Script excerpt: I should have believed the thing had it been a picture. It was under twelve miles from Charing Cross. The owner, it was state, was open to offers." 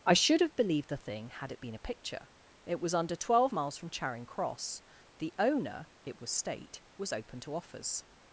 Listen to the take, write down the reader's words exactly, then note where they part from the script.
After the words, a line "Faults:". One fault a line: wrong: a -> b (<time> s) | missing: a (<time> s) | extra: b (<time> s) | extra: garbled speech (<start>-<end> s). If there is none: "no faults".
I should have believed the thing had it been a picture. It was under twelve miles from Charing Cross. The owner, it was state, was open to offers."
Faults:
no faults